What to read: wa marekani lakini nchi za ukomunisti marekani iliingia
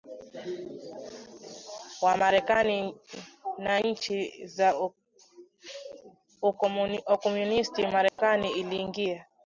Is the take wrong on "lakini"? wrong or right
wrong